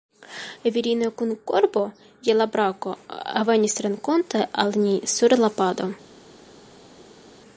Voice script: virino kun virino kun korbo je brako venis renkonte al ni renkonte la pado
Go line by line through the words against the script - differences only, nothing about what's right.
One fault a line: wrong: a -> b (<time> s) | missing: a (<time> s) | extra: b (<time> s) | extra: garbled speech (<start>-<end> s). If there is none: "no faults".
missing: virino kun (1.3 s)
extra: la (2.4 s)
wrong: renkonte -> sur (5.2 s)